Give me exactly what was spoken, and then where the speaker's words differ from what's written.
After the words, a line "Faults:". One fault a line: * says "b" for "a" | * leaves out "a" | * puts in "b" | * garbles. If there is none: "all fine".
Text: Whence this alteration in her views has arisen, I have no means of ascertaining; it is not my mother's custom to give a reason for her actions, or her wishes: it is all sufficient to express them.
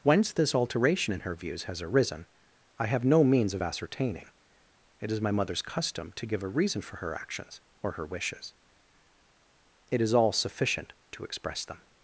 Whence this alteration in her views has arisen, I have no means of ascertaining; it is my mother's custom to give a reason for her actions, or her wishes: it is all sufficient to express them.
Faults:
* leaves out "not"